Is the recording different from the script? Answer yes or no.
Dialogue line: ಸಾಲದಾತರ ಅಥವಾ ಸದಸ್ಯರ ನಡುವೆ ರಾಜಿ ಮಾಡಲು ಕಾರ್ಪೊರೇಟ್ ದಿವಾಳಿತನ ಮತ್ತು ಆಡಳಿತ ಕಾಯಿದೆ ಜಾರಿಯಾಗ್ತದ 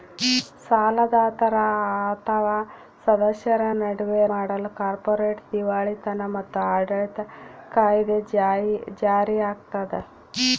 yes